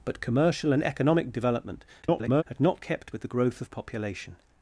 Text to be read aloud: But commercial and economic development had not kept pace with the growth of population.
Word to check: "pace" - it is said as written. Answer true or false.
false